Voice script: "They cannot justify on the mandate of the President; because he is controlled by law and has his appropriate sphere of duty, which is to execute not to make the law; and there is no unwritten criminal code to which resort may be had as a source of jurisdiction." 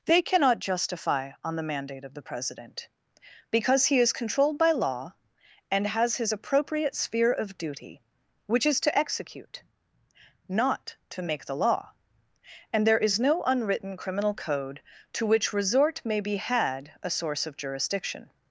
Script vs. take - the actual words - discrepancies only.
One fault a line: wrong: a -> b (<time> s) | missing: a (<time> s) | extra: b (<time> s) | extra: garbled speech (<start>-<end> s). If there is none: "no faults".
missing: as (16.9 s)